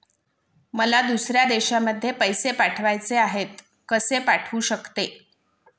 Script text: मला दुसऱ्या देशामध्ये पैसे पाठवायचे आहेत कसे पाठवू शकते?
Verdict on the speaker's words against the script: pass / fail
pass